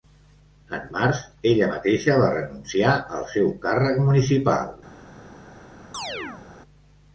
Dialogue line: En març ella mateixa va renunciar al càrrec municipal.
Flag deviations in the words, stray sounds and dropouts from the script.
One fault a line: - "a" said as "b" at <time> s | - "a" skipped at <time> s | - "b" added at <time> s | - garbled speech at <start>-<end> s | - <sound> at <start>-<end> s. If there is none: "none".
- "seu" added at 3.3 s
- chirp at 5.9-6.4 s